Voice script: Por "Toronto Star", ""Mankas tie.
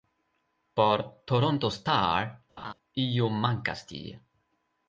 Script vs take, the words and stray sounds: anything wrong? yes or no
yes